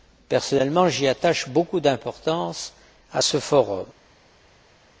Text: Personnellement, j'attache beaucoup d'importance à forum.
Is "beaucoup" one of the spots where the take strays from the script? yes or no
no